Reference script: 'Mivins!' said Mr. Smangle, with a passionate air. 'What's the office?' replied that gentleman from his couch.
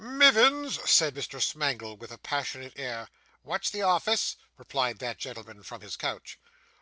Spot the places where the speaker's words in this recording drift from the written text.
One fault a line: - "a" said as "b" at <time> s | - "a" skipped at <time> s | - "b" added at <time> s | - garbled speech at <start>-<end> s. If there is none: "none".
none